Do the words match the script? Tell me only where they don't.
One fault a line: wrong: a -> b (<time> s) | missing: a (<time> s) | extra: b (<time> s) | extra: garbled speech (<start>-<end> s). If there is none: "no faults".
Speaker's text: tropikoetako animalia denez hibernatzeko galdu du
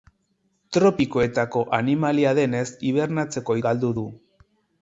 no faults